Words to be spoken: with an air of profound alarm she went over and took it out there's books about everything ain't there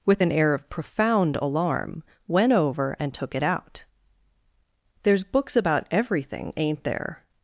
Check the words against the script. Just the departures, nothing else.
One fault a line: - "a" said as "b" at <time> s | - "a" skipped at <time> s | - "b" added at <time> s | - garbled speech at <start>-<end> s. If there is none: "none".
- "she" skipped at 2.0 s